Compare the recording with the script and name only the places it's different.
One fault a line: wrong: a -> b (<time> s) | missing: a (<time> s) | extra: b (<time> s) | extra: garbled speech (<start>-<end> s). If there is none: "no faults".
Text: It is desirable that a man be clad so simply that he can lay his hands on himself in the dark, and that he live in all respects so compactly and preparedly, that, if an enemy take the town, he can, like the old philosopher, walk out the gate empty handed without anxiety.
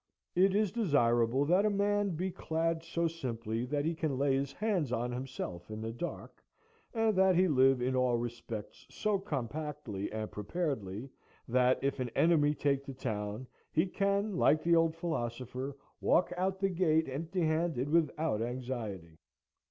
no faults